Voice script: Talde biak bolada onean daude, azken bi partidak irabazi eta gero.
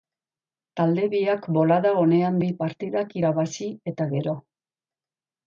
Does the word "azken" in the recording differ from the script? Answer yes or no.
yes